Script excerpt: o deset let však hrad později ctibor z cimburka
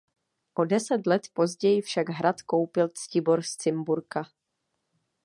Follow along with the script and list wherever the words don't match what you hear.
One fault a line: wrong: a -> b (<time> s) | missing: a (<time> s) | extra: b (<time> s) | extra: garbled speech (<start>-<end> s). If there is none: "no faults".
extra: později (1.3 s)
wrong: později -> koupil (2.4 s)